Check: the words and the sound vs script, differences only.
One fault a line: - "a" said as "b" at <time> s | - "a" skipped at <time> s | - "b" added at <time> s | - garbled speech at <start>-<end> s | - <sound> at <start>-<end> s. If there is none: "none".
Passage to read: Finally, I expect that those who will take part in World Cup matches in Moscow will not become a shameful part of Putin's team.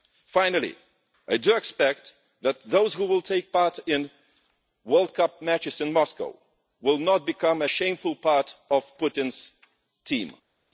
none